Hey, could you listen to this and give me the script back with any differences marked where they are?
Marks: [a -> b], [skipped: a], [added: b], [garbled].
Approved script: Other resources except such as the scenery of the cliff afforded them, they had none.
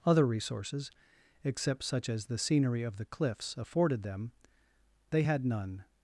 Other resources except such as the scenery of the [cliff -> cliffs] afforded them, they had none.